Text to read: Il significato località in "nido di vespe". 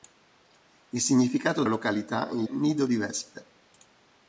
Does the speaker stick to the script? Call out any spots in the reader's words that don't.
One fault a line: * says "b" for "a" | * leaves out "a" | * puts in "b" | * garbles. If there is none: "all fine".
all fine